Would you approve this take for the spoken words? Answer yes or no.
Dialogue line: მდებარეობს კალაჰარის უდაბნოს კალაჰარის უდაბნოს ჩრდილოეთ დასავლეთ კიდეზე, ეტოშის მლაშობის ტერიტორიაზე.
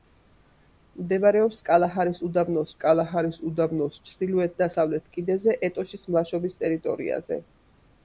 yes